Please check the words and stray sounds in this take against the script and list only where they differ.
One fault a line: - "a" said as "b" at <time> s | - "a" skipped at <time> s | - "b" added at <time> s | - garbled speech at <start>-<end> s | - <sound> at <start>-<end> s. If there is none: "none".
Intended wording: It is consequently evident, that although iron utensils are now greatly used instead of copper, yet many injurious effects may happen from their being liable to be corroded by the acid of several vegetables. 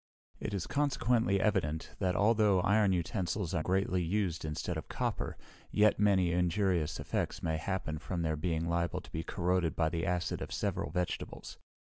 - "now" skipped at 3.6 s